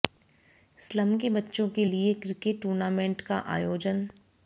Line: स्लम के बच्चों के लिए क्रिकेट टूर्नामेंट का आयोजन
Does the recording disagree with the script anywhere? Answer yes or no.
no